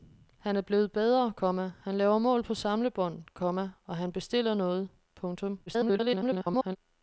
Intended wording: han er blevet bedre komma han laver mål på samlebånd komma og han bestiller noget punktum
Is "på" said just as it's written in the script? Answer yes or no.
yes